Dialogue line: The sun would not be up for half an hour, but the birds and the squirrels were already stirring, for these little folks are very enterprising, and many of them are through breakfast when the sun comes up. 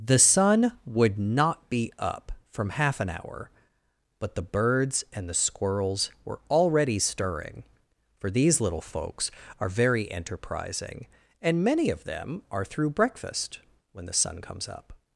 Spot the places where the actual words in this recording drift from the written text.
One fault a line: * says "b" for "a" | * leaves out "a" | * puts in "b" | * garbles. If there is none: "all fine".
* says "from" for "for"